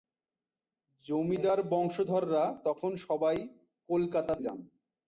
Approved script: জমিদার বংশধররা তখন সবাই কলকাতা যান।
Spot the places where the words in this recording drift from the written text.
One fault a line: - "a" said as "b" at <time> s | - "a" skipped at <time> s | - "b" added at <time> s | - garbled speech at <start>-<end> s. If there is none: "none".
none